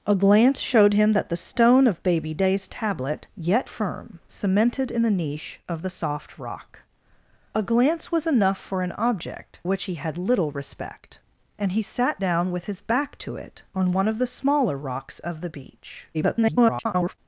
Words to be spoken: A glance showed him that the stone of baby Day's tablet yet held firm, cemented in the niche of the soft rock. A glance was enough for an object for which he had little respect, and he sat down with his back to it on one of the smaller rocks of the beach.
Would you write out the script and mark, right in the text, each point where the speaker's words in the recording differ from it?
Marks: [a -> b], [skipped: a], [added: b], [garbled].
A glance showed him that the stone of baby Day's tablet yet [skipped: held] firm, cemented in the niche of the soft rock. A glance was enough for an object [skipped: for] which he had little respect, and he sat down with his back to it on one of the smaller rocks of the beach. [garbled]